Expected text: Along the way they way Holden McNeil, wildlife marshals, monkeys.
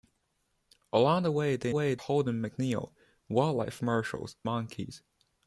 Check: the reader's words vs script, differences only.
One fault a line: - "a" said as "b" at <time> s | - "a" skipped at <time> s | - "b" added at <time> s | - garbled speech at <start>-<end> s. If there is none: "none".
none